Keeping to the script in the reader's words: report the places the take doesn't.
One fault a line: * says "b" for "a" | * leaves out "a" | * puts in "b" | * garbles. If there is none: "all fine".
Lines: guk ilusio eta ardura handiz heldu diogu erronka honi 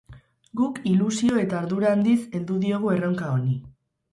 all fine